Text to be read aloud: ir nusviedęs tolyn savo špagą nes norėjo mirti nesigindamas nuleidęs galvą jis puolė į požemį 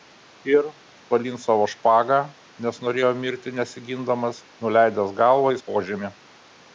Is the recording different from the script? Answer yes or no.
yes